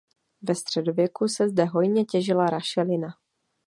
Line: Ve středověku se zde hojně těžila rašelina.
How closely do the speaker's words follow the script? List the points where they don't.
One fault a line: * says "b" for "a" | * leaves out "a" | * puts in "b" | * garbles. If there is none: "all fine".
all fine